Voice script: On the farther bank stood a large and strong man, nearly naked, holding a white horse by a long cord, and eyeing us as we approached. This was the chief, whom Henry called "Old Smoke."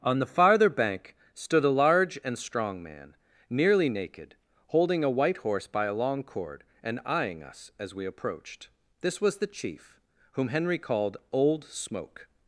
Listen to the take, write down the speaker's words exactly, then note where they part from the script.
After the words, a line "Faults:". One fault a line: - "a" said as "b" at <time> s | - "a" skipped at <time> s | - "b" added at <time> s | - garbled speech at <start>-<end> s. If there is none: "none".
On the farther bank stood a large and strong man, nearly naked, holding a white horse by a long cord, and eyeing us as we approached. This was the chief, whom Henry called "Old Smoke."
Faults:
none